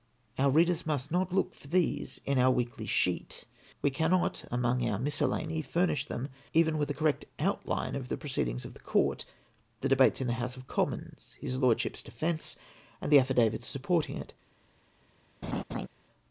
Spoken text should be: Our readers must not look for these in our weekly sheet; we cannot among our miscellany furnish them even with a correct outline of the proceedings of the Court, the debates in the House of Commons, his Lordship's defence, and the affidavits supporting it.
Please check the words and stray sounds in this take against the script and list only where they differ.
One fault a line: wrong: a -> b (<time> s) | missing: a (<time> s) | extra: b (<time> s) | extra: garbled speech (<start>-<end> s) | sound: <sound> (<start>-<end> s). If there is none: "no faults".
sound: laugh (15.4-15.9 s)